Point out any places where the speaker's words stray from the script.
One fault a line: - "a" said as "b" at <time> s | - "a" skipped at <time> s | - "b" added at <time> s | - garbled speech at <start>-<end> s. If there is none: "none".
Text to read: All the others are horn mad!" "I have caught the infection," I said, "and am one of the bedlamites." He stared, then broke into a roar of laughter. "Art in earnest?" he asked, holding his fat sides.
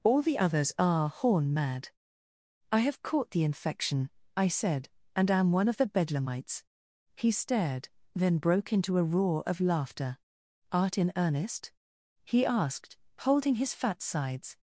none